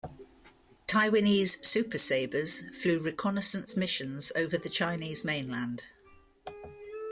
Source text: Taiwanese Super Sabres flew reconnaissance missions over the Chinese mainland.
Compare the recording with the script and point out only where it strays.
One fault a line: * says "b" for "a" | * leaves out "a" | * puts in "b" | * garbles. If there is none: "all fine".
all fine